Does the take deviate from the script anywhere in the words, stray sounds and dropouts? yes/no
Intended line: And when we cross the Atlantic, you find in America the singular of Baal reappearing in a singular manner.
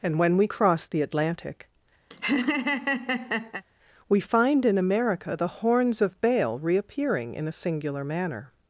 yes